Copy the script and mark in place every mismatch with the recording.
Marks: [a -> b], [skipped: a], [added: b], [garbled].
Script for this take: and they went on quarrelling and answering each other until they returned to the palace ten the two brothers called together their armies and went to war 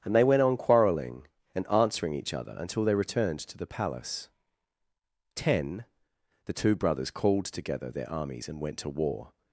and they went on quarrelling and answering each other until they returned to the palace ten the two brothers called together their armies and went to war